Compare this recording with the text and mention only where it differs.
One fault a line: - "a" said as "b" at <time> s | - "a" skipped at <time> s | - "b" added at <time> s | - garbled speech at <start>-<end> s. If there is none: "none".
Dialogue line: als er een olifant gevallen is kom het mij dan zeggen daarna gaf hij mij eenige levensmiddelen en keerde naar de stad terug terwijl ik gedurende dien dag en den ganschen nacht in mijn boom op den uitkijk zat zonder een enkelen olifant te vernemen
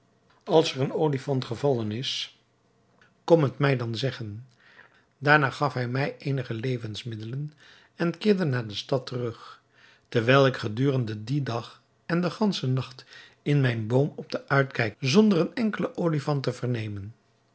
- "zat" skipped at 15.0 s